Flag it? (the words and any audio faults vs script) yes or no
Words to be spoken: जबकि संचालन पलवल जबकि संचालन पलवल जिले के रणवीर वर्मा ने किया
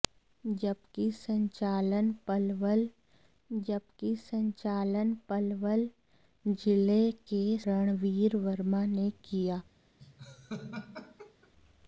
yes